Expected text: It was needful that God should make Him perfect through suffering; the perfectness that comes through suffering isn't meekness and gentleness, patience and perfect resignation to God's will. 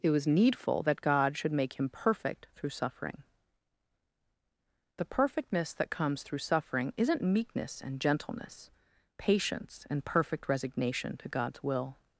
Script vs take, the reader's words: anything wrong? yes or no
no